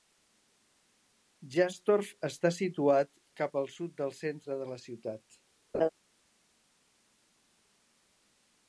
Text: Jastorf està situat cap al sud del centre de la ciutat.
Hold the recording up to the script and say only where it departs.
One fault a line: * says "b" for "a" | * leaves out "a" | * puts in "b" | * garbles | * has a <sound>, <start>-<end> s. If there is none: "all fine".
* has a laugh, 5.7-5.9 s